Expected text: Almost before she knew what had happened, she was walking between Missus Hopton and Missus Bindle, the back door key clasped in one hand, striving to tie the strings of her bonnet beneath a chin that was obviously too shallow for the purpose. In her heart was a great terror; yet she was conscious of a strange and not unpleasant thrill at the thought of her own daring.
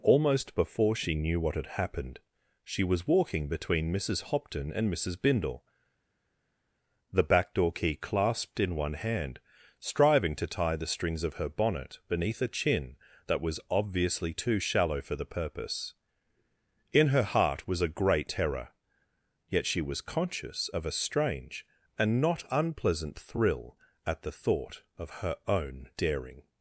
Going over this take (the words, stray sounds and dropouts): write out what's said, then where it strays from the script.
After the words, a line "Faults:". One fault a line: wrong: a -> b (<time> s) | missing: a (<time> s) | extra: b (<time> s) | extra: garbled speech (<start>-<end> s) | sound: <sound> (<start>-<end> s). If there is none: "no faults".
Almost before she knew what had happened, she was walking between Missus Hopton and Missus Bindle, the back door key clasped in one hand, striving to tie the strings of her bonnet beneath a chin that was obviously too shallow for the purpose. In her heart was a great terror; yet she was conscious of a strange and not unpleasant thrill at the thought of her own daring.
Faults:
no faults